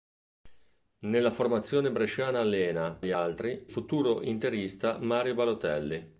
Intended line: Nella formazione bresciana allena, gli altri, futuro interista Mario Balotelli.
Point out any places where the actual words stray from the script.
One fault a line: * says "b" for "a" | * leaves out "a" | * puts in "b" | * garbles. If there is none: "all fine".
all fine